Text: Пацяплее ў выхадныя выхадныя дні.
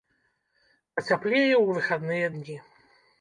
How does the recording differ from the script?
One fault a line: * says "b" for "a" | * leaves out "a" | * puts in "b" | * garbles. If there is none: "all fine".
* leaves out "выхадныя"